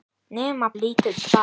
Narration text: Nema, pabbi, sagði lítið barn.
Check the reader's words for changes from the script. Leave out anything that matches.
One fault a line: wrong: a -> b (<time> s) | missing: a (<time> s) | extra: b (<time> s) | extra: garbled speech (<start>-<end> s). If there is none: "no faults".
missing: pabbi sagði (0.7 s)